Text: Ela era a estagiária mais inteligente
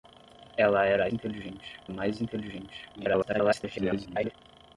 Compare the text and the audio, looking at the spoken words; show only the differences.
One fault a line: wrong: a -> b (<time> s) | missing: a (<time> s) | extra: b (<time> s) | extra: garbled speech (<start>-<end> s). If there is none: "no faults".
wrong: estagiária -> inteligente (1.1 s)
extra: garbled speech (2.9-4.3 s)